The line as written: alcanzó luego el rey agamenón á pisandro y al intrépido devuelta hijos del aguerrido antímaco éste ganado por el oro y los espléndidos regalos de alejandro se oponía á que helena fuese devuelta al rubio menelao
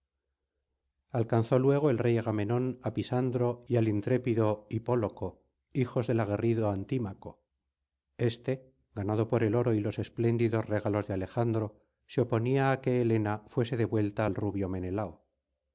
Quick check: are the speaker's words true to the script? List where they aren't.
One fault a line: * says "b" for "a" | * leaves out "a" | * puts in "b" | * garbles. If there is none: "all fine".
* says "hipóloco" for "devuelta"